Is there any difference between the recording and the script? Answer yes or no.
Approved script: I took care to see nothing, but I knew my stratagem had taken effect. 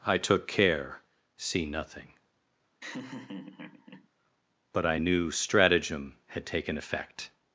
yes